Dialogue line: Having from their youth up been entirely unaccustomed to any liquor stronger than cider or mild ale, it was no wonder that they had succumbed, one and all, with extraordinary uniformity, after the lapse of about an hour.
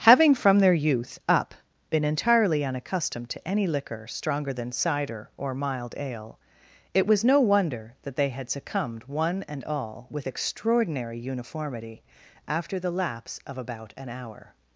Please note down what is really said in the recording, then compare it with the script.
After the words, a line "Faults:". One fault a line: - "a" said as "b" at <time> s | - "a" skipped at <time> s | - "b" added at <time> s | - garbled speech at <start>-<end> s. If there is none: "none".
Having from their youth up been entirely unaccustomed to any liquor stronger than cider or mild ale, it was no wonder that they had succumbed, one and all, with extraordinary uniformity, after the lapse of about an hour.
Faults:
none